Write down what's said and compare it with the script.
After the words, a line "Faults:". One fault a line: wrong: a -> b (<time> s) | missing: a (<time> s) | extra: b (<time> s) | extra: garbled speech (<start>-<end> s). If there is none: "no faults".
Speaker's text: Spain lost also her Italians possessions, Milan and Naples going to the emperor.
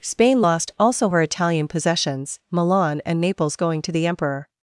Spain lost also her Italian possessions, Milan and Naples going to the emperor.
Faults:
wrong: Italians -> Italian (1.2 s)